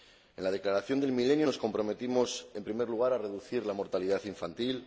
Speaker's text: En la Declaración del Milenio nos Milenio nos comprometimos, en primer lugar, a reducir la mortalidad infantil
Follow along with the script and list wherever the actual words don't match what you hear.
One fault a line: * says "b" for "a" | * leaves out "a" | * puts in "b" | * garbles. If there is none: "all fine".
* leaves out "Milenio nos"